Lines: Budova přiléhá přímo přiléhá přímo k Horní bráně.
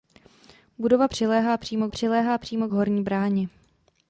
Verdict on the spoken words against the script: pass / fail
pass